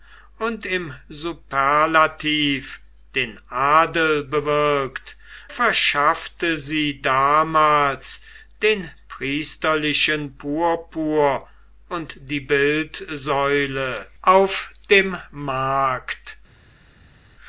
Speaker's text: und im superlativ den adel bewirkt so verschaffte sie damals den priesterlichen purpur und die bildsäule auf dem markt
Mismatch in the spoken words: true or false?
true